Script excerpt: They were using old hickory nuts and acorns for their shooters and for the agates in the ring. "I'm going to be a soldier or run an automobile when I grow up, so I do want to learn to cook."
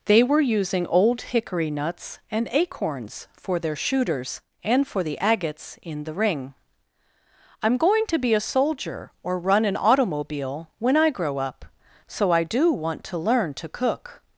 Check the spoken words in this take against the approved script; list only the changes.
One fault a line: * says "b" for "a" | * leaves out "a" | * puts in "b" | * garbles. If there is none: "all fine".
all fine